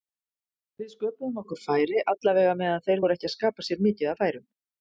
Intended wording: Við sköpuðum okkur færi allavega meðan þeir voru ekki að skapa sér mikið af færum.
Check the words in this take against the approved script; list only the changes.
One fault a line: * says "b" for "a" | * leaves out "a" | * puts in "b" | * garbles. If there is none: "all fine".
all fine